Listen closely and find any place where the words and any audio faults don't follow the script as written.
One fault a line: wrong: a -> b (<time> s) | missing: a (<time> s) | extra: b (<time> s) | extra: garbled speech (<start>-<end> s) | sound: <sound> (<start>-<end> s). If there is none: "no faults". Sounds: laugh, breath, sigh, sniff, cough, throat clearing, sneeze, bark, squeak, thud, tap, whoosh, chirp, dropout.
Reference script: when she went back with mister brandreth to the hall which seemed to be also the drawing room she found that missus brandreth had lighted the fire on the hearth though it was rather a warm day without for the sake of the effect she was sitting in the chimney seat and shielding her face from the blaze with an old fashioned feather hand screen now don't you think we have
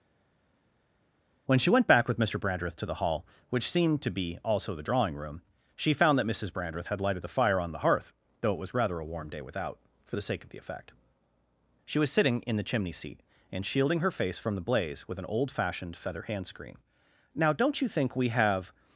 no faults